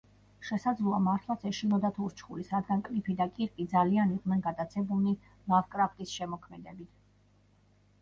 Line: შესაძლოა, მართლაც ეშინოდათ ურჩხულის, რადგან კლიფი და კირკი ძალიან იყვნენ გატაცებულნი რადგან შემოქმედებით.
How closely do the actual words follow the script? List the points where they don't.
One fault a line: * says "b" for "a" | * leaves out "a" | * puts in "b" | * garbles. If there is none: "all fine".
* says "ლავკრაფტის" for "რადგან"